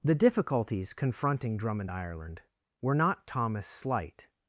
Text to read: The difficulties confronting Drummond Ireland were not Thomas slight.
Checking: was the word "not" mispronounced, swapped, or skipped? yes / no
no